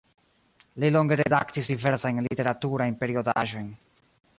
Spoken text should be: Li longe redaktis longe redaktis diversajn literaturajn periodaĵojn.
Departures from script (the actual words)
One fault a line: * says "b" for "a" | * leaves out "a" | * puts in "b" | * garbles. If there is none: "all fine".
* leaves out "longe redaktis"